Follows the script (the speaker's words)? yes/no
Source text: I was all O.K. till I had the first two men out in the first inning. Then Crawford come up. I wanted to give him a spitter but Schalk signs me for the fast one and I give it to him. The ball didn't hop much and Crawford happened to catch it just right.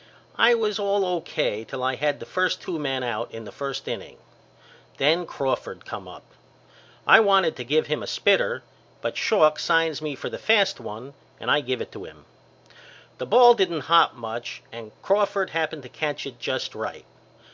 yes